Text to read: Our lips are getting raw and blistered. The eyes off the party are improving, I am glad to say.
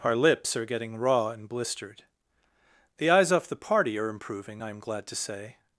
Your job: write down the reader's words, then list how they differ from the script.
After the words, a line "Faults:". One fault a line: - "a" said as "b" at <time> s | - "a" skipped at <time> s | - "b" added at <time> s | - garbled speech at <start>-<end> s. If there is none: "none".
Our lips are getting raw and blistered. The eyes off the party are improving, I am glad to say.
Faults:
none